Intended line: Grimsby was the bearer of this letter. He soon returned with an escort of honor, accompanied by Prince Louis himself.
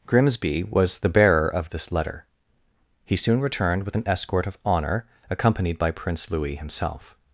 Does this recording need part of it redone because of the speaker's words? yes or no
no